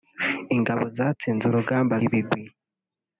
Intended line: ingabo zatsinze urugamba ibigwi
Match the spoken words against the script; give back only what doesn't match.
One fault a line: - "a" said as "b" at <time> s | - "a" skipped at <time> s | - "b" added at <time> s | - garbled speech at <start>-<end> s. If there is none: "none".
none